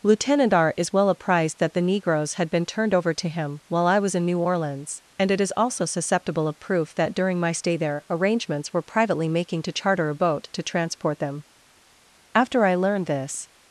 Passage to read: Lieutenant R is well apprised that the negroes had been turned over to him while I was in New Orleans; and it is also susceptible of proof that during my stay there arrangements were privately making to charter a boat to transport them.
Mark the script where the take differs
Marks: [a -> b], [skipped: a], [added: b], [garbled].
Lieutenant R is well apprised that the negroes had been turned over to him while I was in New Orleans; and it is also susceptible of proof that during my stay there arrangements were privately making to charter a boat to transport them. [added: After I learned this]